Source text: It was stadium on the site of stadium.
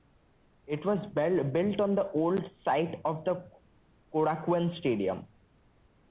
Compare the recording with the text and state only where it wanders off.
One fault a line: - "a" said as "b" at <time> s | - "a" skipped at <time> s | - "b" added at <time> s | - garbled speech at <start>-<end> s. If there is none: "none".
- "stadium" said as "built" at 1.1 s
- "old" added at 2.1 s
- "the Korakuen" added at 3.2 s